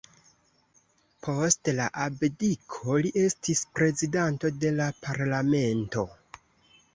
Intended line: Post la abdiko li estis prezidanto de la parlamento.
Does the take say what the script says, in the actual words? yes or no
yes